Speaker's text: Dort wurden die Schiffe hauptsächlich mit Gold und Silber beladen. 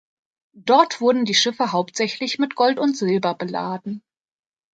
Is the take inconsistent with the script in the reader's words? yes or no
no